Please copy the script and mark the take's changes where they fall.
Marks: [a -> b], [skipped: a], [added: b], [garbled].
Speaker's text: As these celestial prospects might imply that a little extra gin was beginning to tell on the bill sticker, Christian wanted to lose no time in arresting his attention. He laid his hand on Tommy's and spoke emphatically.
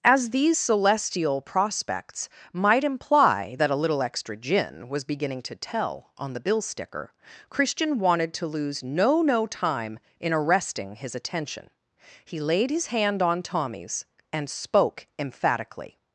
As these celestial prospects might imply that a little extra gin was beginning to tell on the bill sticker, Christian wanted to lose no [added: no] time in arresting his attention. He laid his hand on Tommy's and spoke emphatically.